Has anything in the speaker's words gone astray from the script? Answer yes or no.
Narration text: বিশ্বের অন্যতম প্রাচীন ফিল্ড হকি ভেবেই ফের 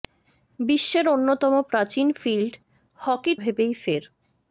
no